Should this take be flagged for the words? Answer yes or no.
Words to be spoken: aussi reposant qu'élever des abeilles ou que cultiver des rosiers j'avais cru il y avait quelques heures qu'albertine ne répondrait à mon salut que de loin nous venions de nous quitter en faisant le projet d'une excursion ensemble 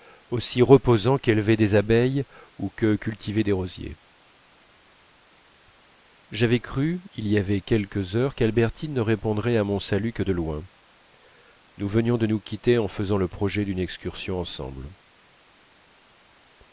no